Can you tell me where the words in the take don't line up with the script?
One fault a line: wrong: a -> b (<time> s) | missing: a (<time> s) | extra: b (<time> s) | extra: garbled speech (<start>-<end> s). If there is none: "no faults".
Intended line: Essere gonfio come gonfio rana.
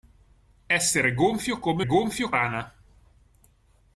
no faults